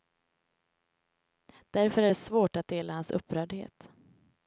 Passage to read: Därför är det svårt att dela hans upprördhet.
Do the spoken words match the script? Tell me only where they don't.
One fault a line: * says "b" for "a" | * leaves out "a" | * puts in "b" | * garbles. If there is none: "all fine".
all fine